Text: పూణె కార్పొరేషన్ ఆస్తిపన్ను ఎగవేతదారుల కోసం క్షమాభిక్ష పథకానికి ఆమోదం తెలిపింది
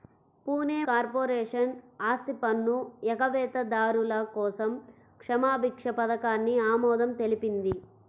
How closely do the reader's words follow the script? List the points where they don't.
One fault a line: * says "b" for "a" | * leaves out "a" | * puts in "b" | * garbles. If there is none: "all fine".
all fine